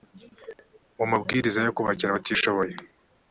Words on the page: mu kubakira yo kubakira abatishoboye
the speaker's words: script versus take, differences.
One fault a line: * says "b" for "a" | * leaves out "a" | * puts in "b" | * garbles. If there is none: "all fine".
* says "mabwiriza" for "kubakira"